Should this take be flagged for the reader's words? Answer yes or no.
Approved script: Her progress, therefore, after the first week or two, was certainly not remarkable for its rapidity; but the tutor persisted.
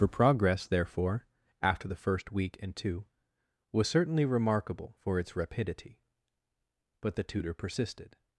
yes